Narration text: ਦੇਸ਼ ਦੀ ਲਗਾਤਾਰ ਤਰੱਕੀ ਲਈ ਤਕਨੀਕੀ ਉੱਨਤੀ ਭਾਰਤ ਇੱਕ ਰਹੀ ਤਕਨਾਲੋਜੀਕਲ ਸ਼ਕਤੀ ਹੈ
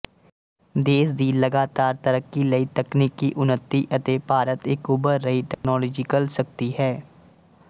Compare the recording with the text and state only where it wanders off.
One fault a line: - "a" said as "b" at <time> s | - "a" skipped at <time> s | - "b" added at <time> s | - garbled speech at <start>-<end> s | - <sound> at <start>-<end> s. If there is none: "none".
- "ਅਤੇ" added at 4.0 s
- "ਉੱਭਰ" added at 4.9 s
- dropout at 5.5-5.6 s